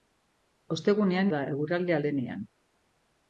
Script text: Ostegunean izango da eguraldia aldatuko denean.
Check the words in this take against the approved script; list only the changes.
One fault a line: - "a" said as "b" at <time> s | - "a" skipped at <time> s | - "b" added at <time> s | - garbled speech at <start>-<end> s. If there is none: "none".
- "izango" skipped at 1.3 s
- "aldatuko" skipped at 2.0 s